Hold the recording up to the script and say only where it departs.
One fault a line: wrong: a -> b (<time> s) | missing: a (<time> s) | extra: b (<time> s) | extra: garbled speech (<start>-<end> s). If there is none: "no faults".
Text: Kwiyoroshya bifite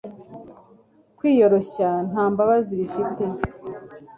extra: nta mbabazi (2.1 s)